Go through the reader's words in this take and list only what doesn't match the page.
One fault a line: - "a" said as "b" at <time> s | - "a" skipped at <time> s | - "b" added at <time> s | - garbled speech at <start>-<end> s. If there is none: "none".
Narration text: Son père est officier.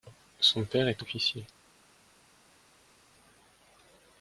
none